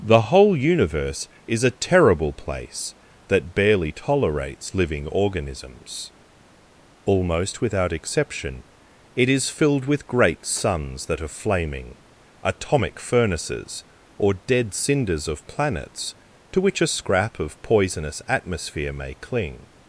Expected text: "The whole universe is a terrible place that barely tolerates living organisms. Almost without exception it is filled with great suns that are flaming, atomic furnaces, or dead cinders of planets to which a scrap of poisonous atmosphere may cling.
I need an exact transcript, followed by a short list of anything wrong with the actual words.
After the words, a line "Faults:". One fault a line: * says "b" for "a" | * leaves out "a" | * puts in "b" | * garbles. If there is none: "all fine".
"The whole universe is a terrible place that barely tolerates living organisms. Almost without exception it is filled with great suns that are flaming, atomic furnaces, or dead cinders of planets to which a scrap of poisonous atmosphere may cling.
Faults:
all fine